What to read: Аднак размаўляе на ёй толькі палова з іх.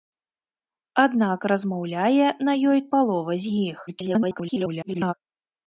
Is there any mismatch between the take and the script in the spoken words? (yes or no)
yes